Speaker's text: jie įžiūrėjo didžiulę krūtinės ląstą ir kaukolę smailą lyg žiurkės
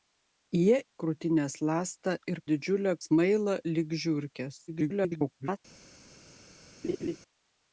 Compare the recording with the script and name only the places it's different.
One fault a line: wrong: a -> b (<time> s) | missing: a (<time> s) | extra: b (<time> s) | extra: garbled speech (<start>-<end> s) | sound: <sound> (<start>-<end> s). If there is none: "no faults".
missing: įžiūrėjo didžiulę (0.8 s)
wrong: kaukolę -> didžiulę (2.5 s)
extra: garbled speech (4.7-5.6 s)
sound: laugh (6.8-7.2 s)